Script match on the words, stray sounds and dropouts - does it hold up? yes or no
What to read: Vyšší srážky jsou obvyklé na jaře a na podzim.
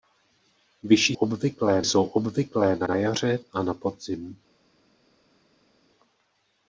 no